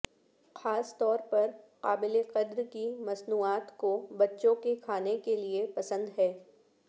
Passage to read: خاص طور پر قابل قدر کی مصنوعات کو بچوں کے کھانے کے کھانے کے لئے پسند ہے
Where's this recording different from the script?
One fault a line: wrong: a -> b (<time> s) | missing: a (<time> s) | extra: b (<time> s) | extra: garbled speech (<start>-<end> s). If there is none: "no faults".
missing: کھانے کے (5.4 s)